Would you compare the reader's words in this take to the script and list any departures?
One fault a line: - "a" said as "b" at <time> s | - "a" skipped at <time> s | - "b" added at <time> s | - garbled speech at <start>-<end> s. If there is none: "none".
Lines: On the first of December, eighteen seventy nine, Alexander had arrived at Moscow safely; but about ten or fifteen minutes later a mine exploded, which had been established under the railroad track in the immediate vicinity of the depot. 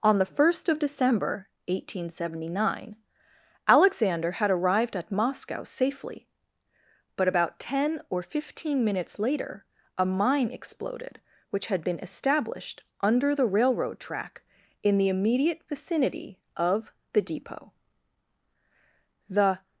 - "The" added at 19.3 s